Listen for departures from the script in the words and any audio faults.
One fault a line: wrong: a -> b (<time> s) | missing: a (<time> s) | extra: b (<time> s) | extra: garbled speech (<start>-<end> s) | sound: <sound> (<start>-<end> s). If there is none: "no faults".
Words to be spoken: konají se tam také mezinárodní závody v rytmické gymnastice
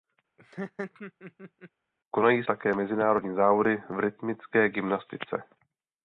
sound: laugh (0.4-1.7 s)
missing: se tam (2.4 s)